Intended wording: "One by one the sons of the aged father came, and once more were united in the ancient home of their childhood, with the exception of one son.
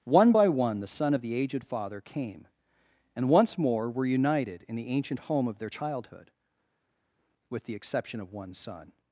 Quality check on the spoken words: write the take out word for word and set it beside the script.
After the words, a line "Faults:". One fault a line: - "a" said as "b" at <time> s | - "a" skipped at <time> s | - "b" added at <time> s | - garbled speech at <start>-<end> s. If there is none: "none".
"One by one the son of the aged father came, and once more were united in the ancient home of their childhood, with the exception of one son.
Faults:
- "sons" said as "son" at 0.9 s